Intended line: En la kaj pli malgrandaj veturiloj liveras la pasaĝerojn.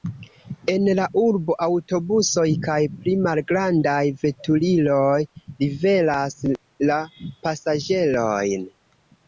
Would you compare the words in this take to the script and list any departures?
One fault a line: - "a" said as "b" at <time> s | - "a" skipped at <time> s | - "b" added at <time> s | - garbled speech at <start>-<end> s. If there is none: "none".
- "urbo aŭtobusoj" added at 1.2 s